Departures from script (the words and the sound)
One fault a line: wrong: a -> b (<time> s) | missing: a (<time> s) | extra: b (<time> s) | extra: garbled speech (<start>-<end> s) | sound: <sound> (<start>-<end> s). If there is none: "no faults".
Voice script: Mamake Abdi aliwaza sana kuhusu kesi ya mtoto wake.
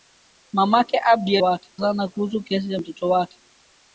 wrong: aliwaza -> wake (1.4 s)